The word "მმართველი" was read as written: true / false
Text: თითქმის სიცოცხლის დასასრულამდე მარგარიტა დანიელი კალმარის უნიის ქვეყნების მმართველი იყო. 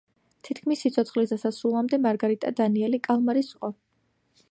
false